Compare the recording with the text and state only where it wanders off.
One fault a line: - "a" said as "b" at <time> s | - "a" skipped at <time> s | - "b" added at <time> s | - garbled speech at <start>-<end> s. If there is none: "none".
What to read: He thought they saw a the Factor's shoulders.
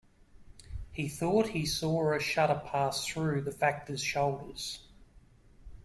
- "they" said as "he" at 1.5 s
- "shudder pass through" added at 2.2 s